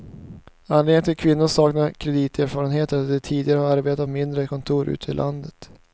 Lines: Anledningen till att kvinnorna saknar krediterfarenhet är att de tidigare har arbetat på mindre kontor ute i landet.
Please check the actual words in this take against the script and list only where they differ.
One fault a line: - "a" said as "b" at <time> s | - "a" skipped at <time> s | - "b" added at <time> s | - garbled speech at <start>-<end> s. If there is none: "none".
none